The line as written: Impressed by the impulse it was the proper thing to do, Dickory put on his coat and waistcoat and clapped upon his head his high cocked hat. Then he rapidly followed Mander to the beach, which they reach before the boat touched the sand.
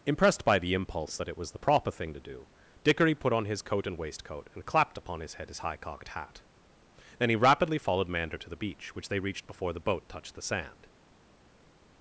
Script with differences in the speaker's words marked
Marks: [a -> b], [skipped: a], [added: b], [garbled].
Impressed by the impulse [added: that] it was the proper thing to do, Dickory put on his coat and waistcoat and clapped upon his head his high cocked hat. Then he rapidly followed Mander to the beach, which they [reach -> reached] before the boat touched the sand.